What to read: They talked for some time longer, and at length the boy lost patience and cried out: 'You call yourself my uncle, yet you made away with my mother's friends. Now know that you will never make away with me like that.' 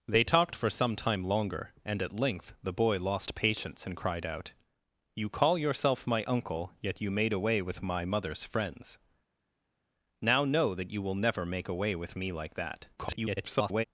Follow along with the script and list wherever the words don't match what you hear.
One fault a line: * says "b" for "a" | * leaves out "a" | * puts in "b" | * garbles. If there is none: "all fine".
* garbles